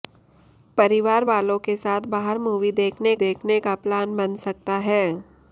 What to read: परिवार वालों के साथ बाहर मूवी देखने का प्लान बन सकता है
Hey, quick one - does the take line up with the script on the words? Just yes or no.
no